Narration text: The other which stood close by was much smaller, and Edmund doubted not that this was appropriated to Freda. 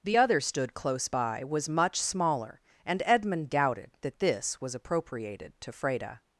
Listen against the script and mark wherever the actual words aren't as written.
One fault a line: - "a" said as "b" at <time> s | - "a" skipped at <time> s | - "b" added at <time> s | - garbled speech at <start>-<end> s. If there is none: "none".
- "which" skipped at 0.4 s
- "not" skipped at 3.9 s